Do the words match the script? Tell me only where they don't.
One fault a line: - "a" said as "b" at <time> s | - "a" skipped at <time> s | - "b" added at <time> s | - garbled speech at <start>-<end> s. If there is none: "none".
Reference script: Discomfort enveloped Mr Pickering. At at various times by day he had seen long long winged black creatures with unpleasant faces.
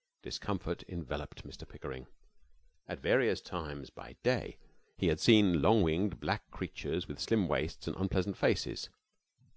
- "at" skipped at 3.0 s
- "long" skipped at 5.8 s
- "slim waists and" added at 7.2 s